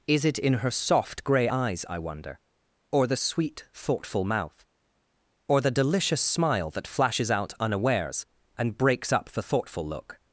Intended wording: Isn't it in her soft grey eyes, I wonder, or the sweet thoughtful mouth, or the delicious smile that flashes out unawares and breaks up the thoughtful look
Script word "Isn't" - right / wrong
wrong